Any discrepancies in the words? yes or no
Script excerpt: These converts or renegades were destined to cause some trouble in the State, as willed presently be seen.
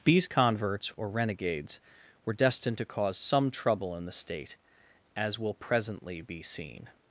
yes